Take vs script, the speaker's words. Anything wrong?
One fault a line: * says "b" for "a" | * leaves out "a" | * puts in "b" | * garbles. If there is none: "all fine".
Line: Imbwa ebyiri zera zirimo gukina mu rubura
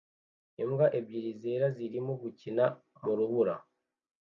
all fine